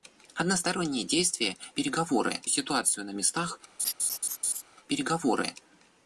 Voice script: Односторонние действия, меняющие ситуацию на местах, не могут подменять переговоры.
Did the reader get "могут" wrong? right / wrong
wrong